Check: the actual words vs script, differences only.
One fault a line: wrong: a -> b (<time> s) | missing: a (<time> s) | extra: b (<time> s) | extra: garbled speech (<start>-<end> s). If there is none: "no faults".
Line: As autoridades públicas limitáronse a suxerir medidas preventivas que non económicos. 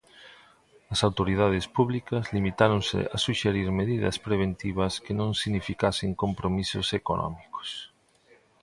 extra: significasen compromisos (5.4 s)